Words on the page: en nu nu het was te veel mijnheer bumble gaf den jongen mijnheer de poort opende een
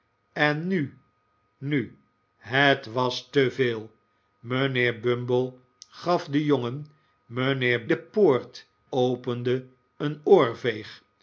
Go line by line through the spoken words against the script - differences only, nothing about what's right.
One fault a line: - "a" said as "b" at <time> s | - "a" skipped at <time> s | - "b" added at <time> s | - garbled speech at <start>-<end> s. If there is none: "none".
none